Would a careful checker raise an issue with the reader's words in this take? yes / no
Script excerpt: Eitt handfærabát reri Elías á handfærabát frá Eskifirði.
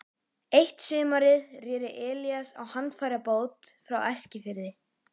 yes